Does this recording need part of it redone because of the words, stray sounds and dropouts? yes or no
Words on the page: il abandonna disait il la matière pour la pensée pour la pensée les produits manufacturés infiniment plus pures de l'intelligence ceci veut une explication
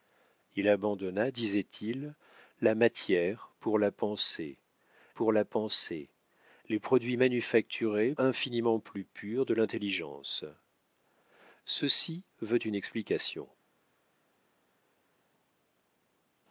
no